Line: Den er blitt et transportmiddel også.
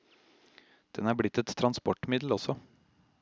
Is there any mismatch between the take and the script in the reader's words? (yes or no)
no